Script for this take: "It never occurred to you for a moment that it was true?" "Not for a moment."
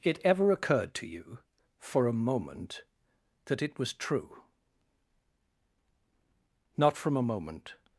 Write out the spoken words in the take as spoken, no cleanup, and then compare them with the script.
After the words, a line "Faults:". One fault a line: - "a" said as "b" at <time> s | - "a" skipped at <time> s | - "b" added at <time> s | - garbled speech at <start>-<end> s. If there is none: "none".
"It ever occurred to you for a moment that it was true?" "Not from a moment."
Faults:
- "never" said as "ever" at 0.2 s
- "for" said as "from" at 7.0 s